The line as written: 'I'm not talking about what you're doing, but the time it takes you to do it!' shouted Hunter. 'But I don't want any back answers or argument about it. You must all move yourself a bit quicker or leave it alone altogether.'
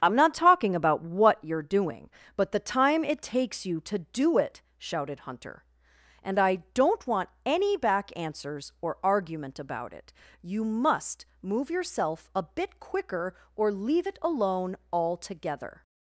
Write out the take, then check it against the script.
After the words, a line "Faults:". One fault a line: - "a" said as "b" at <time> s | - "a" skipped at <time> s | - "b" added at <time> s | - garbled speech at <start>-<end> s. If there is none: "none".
'I'm not talking about what you're doing, but the time it takes you to do it!' shouted Hunter. 'And I don't want any back answers or argument about it. You must move yourself a bit quicker or leave it alone altogether.'
Faults:
- "But" said as "And" at 6.2 s
- "all" skipped at 11.3 s